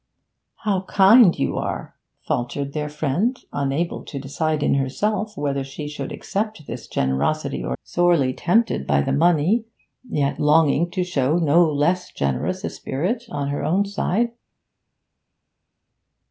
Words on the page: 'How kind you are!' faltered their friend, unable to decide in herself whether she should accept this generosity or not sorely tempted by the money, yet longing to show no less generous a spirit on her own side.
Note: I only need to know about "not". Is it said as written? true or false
false